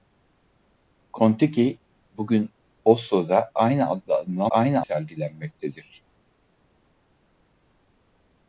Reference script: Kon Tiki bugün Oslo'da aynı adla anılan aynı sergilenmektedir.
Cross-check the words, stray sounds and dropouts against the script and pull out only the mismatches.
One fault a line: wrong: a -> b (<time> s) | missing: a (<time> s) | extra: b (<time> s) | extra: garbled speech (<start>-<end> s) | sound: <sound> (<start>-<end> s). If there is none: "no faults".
no faults